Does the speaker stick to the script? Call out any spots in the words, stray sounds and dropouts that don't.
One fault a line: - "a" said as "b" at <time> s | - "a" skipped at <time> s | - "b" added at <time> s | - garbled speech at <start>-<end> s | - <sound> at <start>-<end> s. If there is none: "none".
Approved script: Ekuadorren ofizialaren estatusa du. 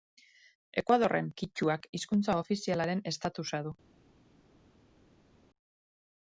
- "kitxuak hizkuntza" added at 1.4 s